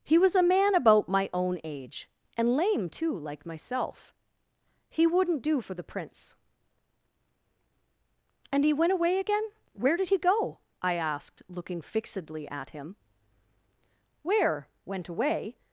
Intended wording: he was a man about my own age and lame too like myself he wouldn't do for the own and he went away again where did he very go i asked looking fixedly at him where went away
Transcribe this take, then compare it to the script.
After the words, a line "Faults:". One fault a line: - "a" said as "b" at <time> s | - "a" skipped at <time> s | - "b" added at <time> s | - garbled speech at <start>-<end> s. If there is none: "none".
he was a man about my own age and lame too like myself he wouldn't do for the prince and he went away again where did he go i asked looking fixedly at him where went away
Faults:
- "own" said as "prince" at 5.8 s
- "very" skipped at 10.2 s